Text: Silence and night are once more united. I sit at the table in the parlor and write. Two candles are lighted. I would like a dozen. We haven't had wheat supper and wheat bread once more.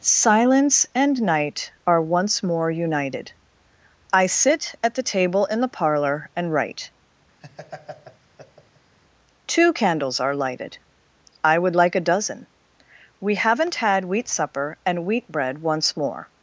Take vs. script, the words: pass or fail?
pass